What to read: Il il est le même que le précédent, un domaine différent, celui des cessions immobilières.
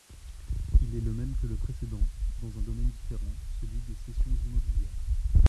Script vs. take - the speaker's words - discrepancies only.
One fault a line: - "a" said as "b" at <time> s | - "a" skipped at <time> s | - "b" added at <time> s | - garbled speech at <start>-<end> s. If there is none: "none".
- "il" skipped at 0.9 s
- "dans" added at 2.4 s